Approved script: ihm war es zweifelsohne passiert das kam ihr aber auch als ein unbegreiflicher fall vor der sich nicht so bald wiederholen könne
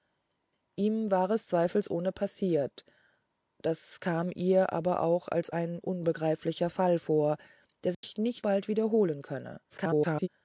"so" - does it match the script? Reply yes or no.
no